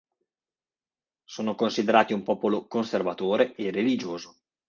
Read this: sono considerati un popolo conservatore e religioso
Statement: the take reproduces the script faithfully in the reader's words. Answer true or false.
true